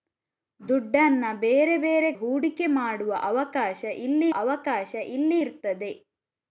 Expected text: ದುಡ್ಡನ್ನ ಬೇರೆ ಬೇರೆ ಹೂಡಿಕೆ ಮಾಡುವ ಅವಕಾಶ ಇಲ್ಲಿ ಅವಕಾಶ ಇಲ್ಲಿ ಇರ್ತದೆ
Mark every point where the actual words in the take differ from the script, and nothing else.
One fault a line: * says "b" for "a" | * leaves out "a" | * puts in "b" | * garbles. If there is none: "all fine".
all fine